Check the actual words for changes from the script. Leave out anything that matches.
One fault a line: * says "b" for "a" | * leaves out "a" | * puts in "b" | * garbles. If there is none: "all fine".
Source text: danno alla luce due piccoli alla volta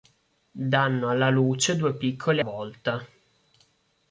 * leaves out "alla"